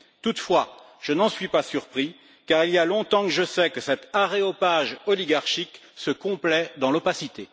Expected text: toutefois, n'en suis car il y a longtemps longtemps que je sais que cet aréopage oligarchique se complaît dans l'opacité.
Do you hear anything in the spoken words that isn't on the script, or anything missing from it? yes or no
yes